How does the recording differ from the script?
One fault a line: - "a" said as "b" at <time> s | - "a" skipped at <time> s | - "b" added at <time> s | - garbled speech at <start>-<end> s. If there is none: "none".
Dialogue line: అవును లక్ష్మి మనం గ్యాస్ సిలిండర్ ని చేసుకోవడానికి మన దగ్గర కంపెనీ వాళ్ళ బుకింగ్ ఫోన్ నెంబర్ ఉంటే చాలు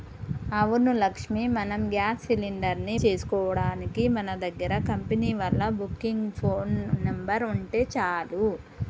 none